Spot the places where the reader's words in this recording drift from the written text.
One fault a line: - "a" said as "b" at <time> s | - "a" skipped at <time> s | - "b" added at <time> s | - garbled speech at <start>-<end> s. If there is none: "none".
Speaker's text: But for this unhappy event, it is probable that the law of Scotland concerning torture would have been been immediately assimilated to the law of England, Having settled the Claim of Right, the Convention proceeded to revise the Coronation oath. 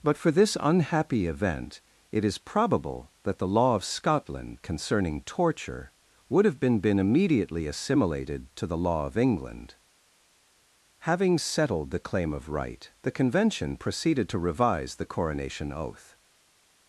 none